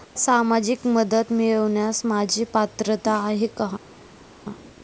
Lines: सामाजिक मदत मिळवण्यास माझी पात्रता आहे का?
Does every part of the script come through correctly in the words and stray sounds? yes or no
yes